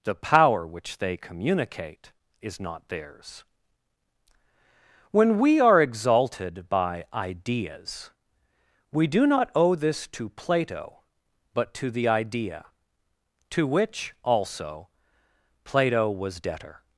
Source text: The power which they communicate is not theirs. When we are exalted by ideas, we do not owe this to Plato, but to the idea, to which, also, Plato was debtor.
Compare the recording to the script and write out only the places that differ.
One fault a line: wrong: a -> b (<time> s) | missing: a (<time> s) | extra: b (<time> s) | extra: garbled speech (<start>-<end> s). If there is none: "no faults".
no faults